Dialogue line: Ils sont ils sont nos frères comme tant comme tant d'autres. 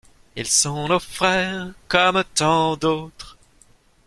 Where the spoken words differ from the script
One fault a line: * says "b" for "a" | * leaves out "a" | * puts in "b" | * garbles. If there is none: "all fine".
* leaves out "ils sont"
* leaves out "comme tant"